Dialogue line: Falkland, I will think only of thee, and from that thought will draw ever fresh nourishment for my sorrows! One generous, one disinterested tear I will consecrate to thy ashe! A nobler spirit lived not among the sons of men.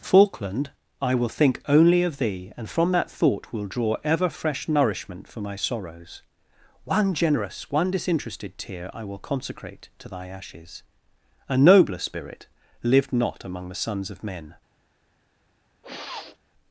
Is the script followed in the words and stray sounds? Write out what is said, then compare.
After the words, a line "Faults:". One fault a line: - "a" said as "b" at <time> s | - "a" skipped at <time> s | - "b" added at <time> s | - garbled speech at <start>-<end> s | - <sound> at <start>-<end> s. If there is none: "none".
Falkland, I will think only of thee, and from that thought will draw ever fresh nourishment for my sorrows! One generous, one disinterested tear I will consecrate to thy ashes! A nobler spirit lived not among the sons of men.
Faults:
- "ashe" said as "ashes" at 10.3 s
- sniff at 15.8-16.4 s